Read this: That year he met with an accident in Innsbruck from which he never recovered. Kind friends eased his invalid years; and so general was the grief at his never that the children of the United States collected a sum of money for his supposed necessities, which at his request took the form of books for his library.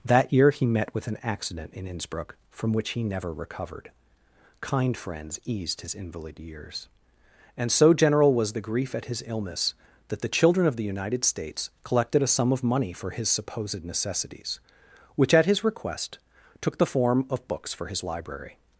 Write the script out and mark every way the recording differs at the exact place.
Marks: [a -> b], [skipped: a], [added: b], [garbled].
That year he met with an accident in Innsbruck from which he never recovered. Kind friends eased his invalid years; and so general was the grief at his [never -> illness] that the children of the United States collected a sum of money for his supposed necessities, which at his request took the form of books for his library.